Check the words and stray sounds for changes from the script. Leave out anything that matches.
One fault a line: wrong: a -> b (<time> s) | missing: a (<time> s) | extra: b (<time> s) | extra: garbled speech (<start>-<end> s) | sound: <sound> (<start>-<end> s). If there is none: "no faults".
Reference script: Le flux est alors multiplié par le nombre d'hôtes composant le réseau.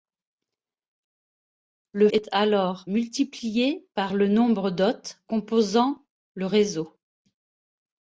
missing: flux (2.1 s)